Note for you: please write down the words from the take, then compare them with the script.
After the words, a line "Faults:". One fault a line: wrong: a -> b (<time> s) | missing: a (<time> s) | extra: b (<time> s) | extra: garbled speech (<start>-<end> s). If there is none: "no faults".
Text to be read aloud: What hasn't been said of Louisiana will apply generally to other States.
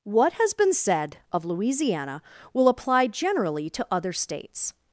What has been said of Louisiana will apply generally to other States.
Faults:
wrong: hasn't -> has (0.4 s)